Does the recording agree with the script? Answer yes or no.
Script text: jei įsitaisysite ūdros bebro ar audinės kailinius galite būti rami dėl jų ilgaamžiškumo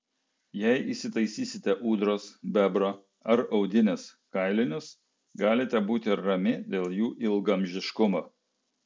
yes